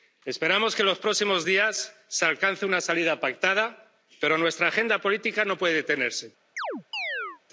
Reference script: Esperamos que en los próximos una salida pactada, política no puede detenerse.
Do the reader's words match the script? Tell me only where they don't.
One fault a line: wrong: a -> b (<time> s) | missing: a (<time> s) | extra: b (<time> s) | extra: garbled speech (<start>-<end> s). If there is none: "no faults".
extra: días se alcance (1.4 s)
extra: pero nuestra agenda (4.2 s)